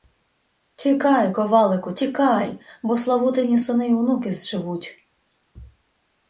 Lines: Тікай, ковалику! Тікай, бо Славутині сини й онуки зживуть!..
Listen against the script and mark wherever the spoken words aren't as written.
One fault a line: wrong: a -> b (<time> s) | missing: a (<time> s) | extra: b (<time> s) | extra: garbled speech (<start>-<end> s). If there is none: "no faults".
no faults